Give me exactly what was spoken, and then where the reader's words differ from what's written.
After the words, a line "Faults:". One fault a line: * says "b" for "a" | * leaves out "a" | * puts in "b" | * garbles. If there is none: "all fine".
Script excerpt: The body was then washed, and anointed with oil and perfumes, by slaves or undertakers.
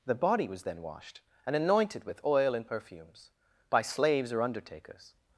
The body was then washed, and anointed with oil and perfumes, by slaves or undertakers.
Faults:
all fine